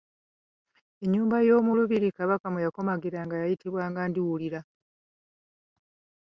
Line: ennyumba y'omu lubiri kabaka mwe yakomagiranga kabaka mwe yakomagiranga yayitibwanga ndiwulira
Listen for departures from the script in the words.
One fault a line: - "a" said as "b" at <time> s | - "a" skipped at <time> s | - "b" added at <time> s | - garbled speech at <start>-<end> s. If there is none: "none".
- "kabaka mwe yakomagiranga" skipped at 3.3 s